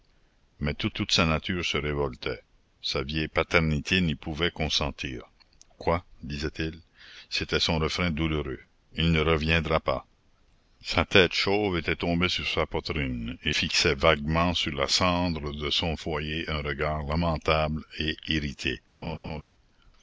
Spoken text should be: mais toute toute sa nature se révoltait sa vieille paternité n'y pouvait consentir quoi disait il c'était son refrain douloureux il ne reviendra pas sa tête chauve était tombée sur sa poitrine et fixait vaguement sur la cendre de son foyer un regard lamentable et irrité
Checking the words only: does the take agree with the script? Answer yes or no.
yes